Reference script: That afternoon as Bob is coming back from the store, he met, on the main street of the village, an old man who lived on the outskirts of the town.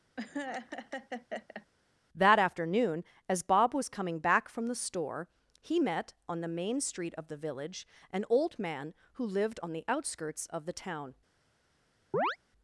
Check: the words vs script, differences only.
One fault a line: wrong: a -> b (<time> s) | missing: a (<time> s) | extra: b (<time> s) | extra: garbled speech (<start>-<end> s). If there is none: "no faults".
wrong: is -> was (3.7 s)